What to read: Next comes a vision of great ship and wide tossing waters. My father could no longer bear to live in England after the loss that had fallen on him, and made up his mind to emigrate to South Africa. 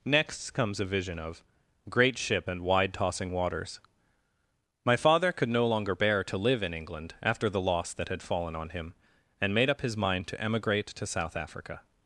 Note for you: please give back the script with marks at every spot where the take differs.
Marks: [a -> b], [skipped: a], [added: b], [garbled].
Next comes a vision of great ship and wide tossing waters. My father could no longer bear to live in England after the loss that had fallen on him, and made up his mind to emigrate to South Africa.